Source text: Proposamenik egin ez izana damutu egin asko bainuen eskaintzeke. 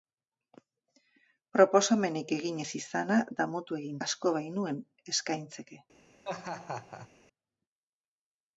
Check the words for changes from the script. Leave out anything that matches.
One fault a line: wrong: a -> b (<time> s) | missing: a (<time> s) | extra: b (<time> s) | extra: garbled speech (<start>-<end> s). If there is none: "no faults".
no faults